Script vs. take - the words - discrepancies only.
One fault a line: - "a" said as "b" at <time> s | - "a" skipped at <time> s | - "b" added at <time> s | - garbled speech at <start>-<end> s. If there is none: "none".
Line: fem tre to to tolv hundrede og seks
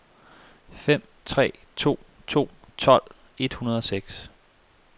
- "et" added at 3.4 s